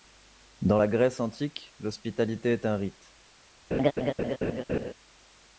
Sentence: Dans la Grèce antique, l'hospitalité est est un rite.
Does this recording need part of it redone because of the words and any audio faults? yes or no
yes